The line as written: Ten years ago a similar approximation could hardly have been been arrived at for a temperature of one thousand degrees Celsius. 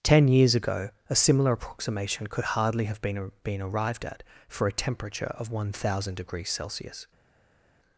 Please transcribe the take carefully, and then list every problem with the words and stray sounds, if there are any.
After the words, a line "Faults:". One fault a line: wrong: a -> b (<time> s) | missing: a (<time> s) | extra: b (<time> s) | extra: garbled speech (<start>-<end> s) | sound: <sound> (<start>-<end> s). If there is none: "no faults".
Ten years ago a similar approximation could hardly have been been arrived at for a temperature of one thousand degrees Celsius.
Faults:
no faults